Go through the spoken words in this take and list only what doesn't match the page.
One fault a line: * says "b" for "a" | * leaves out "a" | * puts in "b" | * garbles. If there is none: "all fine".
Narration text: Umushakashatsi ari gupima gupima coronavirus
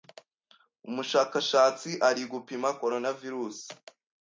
* leaves out "gupima"